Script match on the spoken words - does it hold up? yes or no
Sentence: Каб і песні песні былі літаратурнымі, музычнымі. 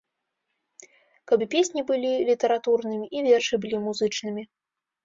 no